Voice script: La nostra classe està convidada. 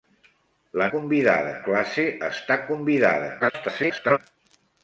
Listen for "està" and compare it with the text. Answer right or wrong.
right